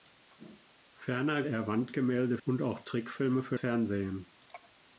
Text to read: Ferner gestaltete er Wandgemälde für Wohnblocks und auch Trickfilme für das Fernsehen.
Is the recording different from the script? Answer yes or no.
yes